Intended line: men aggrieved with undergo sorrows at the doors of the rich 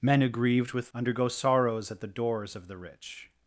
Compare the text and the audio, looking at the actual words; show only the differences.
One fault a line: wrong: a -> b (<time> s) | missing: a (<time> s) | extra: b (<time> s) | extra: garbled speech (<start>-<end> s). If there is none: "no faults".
no faults